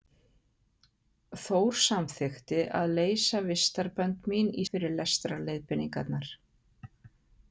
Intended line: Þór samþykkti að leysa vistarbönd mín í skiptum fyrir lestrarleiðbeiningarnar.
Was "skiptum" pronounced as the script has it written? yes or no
no